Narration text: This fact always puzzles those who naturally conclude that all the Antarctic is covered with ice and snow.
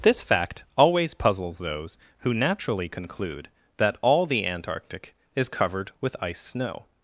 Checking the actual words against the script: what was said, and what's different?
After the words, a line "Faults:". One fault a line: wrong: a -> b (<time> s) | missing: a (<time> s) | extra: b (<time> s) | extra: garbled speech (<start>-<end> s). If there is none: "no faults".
This fact always puzzles those who naturally conclude that all the Antarctic is covered with ice snow.
Faults:
missing: and (6.4 s)